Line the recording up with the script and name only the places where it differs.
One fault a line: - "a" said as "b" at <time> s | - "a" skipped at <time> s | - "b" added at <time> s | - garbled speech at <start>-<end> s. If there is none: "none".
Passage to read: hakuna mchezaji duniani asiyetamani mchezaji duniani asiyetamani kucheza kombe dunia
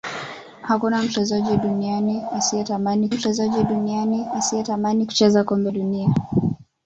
none